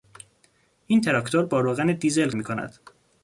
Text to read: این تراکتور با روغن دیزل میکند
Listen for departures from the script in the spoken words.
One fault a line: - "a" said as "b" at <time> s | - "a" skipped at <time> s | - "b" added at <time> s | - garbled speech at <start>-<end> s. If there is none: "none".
none